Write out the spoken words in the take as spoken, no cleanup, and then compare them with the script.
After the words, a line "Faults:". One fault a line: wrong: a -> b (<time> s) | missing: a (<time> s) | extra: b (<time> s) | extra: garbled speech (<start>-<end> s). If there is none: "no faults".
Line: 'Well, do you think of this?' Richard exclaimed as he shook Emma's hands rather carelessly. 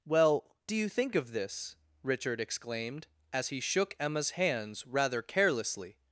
'Well, do you think of this?' Richard exclaimed as he shook Emma's hands rather carelessly.
Faults:
no faults